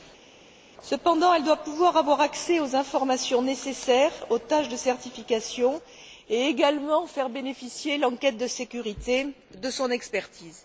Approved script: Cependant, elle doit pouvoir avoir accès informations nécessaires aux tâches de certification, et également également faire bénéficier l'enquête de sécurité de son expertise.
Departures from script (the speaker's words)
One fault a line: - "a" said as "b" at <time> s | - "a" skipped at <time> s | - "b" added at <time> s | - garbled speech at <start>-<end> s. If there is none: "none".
- "aux" added at 2.6 s
- "également" skipped at 7.1 s